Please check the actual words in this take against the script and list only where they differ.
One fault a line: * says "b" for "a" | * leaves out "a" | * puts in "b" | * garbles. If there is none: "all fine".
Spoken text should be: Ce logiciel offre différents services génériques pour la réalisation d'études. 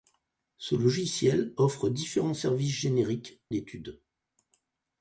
* leaves out "pour la réalisation"